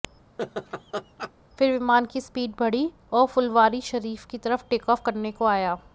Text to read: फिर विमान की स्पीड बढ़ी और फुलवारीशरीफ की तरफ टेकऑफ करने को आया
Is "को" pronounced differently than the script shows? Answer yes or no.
no